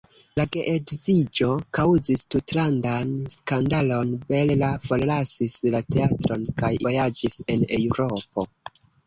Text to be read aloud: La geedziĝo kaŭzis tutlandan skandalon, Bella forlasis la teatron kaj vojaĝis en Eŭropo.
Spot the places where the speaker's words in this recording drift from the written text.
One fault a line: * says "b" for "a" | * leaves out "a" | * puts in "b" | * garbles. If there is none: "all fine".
all fine